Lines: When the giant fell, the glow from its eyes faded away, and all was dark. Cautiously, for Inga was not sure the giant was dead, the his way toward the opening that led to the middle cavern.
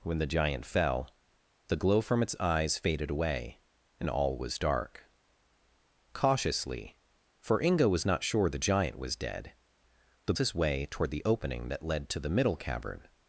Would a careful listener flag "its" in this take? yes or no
no